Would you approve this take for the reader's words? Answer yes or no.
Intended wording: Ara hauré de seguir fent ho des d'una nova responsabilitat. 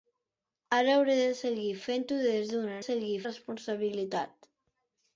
no